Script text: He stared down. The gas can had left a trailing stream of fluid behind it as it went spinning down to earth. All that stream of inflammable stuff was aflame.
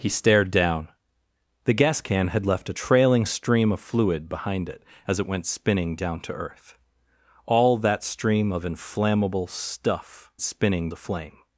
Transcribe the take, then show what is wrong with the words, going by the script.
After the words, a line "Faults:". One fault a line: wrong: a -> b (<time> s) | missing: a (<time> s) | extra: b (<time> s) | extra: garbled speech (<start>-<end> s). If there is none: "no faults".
He stared down. The gas can had left a trailing stream of fluid behind it as it went spinning down to earth. All that stream of inflammable stuff spinning aflame.
Faults:
wrong: was -> spinning (10.4 s)